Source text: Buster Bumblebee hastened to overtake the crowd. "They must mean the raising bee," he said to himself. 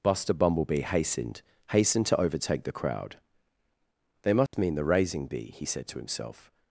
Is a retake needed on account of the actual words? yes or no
yes